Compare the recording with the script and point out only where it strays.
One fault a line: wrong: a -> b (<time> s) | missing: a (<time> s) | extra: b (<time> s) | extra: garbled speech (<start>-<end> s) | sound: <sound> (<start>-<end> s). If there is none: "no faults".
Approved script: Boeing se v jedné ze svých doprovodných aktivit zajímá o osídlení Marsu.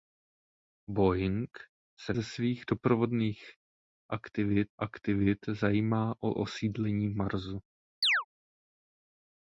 missing: v jedné (2.1 s)
extra: aktivit (4.8 s)
sound: chirp (8.0-8.2 s)